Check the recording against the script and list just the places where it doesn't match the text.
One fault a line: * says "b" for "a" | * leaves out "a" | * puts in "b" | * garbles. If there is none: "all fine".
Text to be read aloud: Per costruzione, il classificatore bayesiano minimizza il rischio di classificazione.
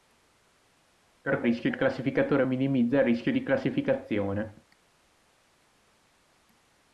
* says "rischio" for "costruzione"
* leaves out "bayesiano"